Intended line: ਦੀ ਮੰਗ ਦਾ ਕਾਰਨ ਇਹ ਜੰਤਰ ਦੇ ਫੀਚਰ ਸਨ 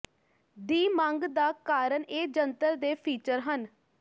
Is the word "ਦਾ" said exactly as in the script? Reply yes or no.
yes